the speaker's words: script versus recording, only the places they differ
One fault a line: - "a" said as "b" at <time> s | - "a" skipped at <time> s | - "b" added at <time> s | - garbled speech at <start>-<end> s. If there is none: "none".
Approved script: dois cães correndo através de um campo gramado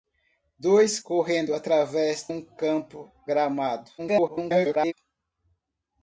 - "cães" skipped at 1.0 s
- "de" skipped at 2.3 s
- garbled speech at 4.0-4.9 s